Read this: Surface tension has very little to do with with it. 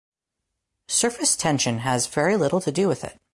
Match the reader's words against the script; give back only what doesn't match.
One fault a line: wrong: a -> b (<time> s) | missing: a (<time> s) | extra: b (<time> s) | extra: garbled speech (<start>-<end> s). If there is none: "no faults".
missing: with (3.0 s)